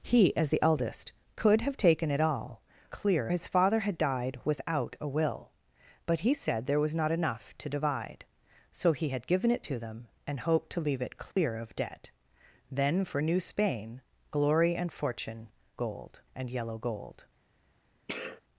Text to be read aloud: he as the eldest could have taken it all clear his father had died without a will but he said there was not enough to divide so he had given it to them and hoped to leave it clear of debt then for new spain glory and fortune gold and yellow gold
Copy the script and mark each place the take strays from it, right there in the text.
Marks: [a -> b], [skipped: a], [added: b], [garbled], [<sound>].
he as the eldest could have taken it all clear his father had died without a will but he said there was not enough to divide so he had given it to them and hoped to leave it clear [dropout] of debt then for new spain glory and fortune gold and yellow gold [sneeze]